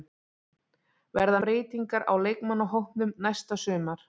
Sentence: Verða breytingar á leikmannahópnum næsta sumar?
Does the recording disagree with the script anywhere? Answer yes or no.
no